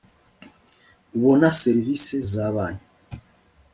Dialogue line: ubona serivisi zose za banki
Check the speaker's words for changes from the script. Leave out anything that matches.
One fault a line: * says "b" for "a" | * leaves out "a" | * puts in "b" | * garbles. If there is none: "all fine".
* leaves out "zose"